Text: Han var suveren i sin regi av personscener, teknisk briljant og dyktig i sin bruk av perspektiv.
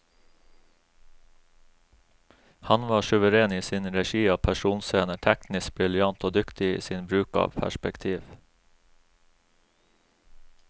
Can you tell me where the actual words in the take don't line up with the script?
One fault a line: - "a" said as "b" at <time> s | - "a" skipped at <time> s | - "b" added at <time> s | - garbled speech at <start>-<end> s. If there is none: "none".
none